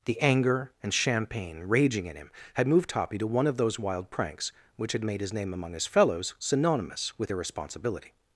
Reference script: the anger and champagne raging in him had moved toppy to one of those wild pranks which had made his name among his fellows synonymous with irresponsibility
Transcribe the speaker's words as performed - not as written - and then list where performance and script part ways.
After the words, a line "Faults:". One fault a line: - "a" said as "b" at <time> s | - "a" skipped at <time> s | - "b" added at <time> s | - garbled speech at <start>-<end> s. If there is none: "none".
the anger and champagne raging in him had moved toppy to one of those wild pranks which had made his name among his fellows synonymous with irresponsibility
Faults:
none